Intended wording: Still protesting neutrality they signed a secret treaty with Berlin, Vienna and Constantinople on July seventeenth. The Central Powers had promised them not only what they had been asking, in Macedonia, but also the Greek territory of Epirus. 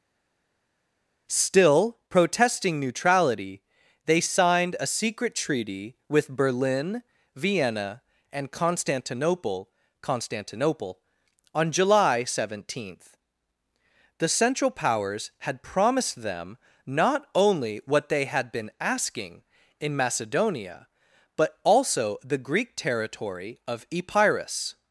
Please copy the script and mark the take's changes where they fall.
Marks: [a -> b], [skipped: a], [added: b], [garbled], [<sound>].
Still protesting neutrality they signed a secret treaty with Berlin, Vienna and Constantinople [added: Constantinople] on July seventeenth. The Central Powers had promised them not only what they had been asking, in Macedonia, but also the Greek territory of Epirus.